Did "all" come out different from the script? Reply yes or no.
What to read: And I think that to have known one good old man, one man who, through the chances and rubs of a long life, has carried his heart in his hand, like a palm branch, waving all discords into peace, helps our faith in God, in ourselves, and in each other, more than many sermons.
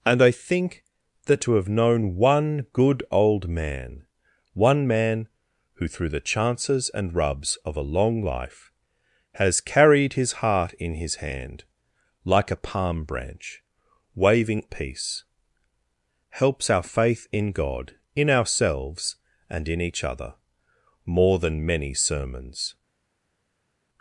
yes